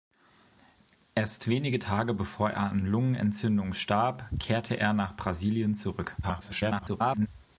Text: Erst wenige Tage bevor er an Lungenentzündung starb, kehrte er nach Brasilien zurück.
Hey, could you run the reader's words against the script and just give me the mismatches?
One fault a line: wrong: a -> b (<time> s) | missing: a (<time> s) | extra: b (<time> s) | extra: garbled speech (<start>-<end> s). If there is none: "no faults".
extra: garbled speech (6.2-7.3 s)